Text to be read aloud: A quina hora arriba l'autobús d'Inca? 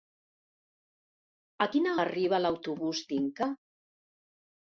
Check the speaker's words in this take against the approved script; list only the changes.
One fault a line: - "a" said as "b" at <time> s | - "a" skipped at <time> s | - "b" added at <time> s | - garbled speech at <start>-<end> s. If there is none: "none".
- "hora" skipped at 2.0 s